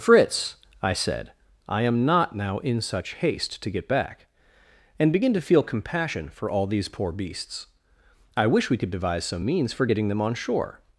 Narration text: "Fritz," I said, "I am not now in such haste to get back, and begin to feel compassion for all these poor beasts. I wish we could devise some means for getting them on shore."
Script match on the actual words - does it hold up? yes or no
yes